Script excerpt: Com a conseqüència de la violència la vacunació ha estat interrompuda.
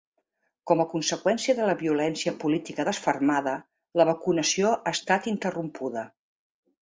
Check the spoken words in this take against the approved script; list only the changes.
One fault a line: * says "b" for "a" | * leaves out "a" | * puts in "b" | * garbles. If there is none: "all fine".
* puts in "política desfermada"